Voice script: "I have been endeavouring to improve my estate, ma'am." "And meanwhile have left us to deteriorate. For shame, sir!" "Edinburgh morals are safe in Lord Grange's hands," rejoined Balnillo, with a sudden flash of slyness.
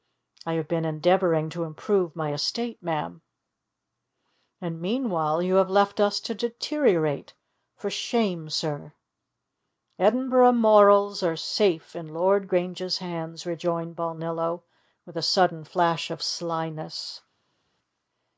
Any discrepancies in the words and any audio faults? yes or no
yes